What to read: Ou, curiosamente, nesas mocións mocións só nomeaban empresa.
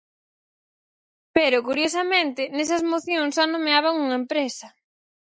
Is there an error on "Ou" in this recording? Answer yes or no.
yes